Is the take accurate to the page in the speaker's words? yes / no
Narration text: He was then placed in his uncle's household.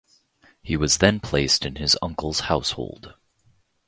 yes